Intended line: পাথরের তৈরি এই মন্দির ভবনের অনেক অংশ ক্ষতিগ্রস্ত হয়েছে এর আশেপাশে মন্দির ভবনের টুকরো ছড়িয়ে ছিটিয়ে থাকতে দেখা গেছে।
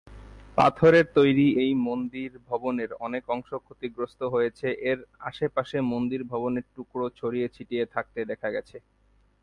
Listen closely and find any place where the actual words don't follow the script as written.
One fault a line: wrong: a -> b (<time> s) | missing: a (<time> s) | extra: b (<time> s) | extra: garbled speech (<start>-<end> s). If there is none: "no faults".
no faults